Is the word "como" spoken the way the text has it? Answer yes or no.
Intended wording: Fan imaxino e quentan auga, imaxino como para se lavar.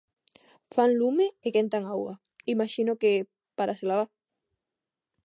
no